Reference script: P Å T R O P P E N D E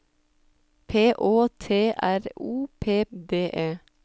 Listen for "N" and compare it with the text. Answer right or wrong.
wrong